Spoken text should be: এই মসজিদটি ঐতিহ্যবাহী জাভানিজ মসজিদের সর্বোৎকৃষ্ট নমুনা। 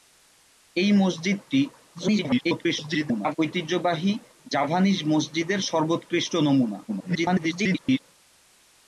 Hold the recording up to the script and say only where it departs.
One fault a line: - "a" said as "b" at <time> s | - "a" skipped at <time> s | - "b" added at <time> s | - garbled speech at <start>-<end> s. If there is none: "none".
- garbled speech at 1.9-3.4 s
- garbled speech at 6.9-8.0 s